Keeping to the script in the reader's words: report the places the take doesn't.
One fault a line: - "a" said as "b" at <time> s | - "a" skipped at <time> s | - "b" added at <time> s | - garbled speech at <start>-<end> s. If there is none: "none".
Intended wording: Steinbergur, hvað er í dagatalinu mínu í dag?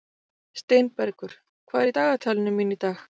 none